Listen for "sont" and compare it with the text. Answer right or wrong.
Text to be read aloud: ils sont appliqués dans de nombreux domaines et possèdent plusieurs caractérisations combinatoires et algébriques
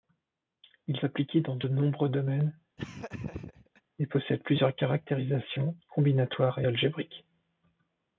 wrong